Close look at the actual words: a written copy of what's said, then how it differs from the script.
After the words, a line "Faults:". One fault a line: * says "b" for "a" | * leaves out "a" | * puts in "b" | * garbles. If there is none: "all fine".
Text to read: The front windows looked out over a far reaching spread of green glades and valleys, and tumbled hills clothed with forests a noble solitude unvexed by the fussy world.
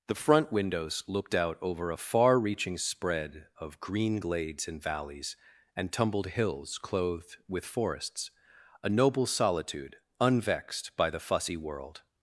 The front windows looked out over a far reaching spread of green glades and valleys, and tumbled hills clothed with forests a noble solitude unvexed by the fussy world.
Faults:
all fine